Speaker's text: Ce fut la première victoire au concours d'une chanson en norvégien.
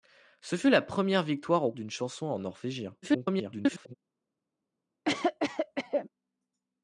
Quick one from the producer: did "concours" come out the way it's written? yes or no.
no